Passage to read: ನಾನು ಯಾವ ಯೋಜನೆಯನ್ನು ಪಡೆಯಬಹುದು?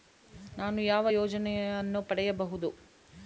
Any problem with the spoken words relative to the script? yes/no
no